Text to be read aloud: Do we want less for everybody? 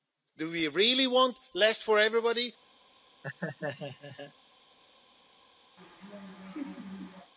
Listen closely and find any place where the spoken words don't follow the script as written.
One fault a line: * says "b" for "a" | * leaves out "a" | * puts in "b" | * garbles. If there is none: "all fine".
* puts in "really"